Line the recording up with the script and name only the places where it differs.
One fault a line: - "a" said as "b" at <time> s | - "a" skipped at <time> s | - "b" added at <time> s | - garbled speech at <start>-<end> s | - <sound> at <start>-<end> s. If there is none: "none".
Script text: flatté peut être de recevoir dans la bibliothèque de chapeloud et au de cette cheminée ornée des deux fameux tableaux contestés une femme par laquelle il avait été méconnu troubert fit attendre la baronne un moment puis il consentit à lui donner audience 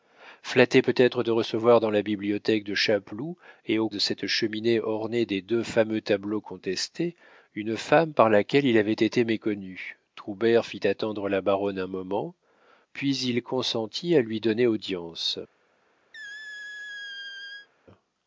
- squeak at 16.1-17.7 s